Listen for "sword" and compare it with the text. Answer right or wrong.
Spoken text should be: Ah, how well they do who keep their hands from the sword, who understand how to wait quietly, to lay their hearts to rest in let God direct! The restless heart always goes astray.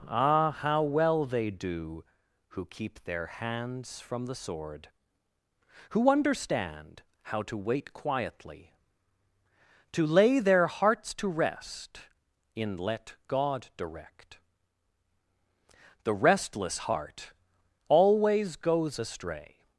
right